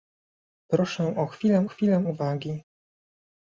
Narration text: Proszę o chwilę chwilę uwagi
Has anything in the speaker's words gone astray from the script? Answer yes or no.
no